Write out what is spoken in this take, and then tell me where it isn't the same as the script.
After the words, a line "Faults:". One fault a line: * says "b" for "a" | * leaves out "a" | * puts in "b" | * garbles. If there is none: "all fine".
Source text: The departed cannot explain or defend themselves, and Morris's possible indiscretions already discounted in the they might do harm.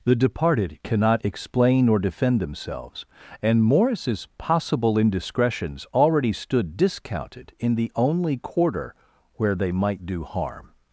The departed cannot explain or defend themselves, and Morris's possible indiscretions already stood discounted in the only quarter where they might do harm.
Faults:
* puts in "stood"
* puts in "only quarter where"